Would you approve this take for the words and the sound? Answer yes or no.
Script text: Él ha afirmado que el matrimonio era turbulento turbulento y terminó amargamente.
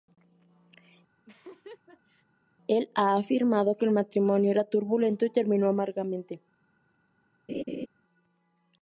no